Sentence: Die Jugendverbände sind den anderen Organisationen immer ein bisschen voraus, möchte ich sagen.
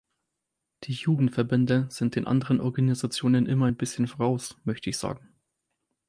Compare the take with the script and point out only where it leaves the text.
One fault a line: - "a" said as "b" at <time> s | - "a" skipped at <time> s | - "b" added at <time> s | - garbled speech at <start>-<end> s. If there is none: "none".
none